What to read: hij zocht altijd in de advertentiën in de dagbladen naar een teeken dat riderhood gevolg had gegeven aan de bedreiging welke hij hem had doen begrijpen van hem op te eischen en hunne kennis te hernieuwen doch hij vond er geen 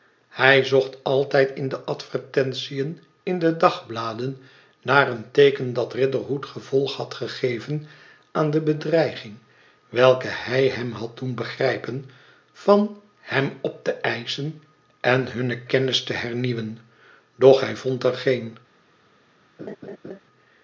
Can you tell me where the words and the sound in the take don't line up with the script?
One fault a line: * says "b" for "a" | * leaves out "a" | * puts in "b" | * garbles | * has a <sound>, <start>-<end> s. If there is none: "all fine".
* has a laugh, 19.6-20.2 s